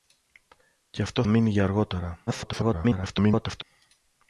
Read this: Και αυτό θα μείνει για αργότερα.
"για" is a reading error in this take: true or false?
false